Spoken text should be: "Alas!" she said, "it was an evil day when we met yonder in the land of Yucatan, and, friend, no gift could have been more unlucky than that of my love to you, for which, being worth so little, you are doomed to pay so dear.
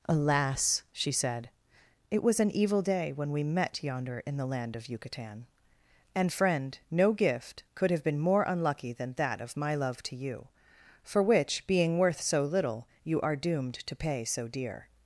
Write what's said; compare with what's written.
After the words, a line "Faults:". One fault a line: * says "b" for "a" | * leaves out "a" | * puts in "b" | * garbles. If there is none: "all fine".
"Alas!" she said, "it was an evil day when we met yonder in the land of Yucatan, and, friend, no gift could have been more unlucky than that of my love to you, for which, being worth so little, you are doomed to pay so dear.
Faults:
all fine